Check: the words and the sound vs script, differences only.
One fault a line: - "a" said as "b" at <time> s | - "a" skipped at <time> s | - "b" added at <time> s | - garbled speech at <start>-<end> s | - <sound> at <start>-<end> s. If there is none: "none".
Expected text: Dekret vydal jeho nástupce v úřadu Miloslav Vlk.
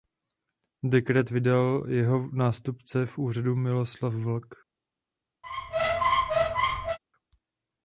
- squeak at 5.4-7.0 s